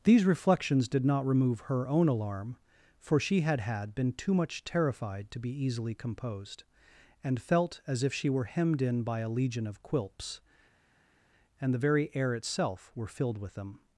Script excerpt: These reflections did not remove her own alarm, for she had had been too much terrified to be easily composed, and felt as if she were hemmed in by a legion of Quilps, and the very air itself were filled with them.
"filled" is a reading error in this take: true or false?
false